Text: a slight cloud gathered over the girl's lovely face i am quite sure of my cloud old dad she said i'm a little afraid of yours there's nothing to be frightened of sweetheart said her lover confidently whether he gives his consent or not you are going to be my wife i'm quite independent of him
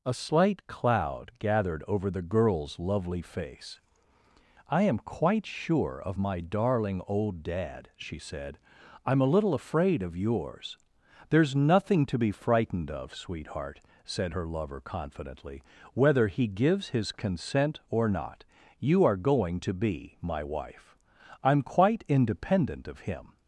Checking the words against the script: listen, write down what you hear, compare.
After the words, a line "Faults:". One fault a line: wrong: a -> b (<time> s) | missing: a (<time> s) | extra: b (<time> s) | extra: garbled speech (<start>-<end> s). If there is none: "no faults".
a slight cloud gathered over the girl's lovely face i am quite sure of my darling old dad she said i'm a little afraid of yours there's nothing to be frightened of sweetheart said her lover confidently whether he gives his consent or not you are going to be my wife i'm quite independent of him
Faults:
wrong: cloud -> darling (6.4 s)